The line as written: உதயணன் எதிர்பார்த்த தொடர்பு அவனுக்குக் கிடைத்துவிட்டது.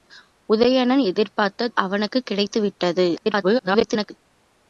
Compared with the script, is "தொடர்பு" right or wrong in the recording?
wrong